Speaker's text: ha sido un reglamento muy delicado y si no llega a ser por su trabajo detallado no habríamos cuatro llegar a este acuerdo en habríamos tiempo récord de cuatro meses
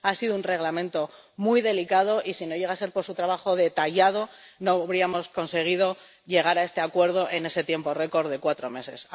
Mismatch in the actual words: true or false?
true